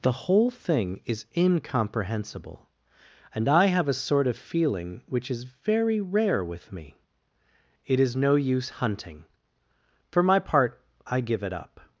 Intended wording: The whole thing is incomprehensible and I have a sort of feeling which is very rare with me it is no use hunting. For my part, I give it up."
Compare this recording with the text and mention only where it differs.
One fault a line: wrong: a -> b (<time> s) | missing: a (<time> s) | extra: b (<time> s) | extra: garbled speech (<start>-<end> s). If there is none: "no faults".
no faults